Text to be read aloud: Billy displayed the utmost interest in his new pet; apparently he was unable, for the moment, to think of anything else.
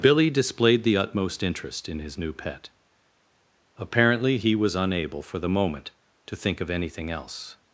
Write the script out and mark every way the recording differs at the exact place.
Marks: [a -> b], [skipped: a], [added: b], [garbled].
Billy displayed the utmost interest in his new pet; apparently he was unable, for the moment, to think of anything else.